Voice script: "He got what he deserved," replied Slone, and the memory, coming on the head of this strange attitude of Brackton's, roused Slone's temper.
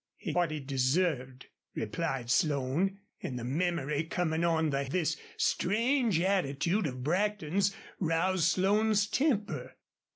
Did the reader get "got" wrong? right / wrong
wrong